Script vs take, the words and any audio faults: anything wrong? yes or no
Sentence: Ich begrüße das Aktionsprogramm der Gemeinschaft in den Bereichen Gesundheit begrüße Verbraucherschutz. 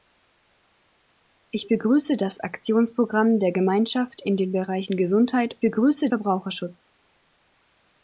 no